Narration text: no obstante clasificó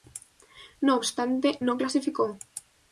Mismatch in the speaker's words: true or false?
true